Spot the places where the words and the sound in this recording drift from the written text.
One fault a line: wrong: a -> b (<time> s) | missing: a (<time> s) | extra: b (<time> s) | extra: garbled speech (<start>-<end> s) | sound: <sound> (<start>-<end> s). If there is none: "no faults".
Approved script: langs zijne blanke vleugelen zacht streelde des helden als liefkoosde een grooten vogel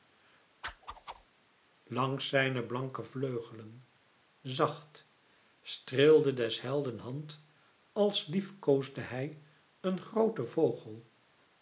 sound: whoosh (0.6-1.3 s)
extra: hand (7.0 s)
extra: hij (9.0 s)